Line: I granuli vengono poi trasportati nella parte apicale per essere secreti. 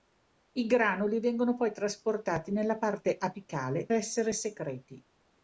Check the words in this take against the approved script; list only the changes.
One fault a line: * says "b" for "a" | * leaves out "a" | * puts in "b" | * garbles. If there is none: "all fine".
* leaves out "per"